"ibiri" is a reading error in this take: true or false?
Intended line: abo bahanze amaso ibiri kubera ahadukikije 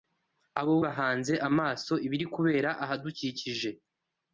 false